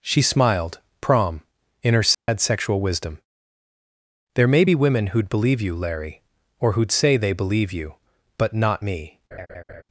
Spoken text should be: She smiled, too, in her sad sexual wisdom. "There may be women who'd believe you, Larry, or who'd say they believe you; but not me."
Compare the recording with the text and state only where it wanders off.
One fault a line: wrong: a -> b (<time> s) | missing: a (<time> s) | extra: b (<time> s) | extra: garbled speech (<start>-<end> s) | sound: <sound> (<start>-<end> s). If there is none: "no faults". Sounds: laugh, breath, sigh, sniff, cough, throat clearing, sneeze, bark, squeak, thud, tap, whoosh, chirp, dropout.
wrong: too -> prom (1.0 s)
sound: dropout (2.1-2.3 s)
sound: laugh (9.3-9.8 s)